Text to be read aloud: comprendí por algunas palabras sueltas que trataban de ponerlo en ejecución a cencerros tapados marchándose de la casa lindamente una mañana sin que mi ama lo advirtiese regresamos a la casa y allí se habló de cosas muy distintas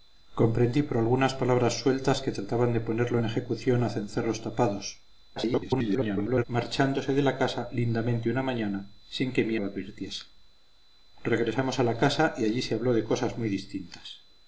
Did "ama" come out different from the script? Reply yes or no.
yes